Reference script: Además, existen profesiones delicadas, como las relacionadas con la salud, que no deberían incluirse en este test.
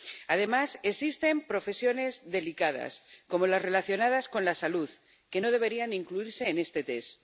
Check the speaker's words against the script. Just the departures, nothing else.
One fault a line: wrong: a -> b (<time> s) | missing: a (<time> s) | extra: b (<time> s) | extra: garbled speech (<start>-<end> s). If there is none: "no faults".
no faults